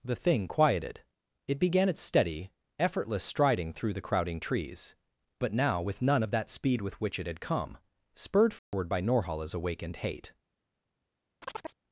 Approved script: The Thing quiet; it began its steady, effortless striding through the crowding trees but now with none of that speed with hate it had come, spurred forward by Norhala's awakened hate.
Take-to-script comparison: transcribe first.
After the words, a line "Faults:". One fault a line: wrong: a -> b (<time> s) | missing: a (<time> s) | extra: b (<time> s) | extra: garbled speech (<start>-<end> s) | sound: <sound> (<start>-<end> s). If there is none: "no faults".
The Thing quieted; it began its steady, effortless striding through the crowding trees but now with none of that speed with which it had come, spurred forward by Norhala's awakened hate.
Faults:
wrong: quiet -> quieted (0.5 s)
wrong: hate -> which (7.0 s)
sound: dropout (8.6-8.7 s)
sound: chirp (11.4-11.8 s)